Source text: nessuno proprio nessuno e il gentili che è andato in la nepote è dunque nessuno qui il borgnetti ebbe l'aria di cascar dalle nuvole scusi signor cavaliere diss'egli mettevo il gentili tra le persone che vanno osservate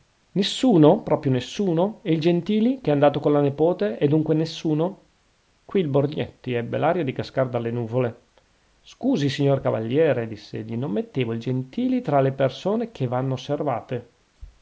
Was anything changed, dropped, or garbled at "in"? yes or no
yes